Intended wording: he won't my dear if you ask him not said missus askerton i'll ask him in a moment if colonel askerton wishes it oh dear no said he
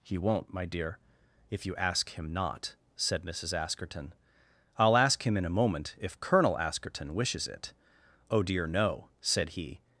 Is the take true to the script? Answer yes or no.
yes